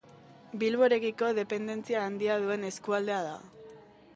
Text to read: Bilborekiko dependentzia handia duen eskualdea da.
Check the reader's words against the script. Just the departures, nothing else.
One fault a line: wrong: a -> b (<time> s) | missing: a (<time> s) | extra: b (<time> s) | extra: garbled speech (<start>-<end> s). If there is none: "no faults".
no faults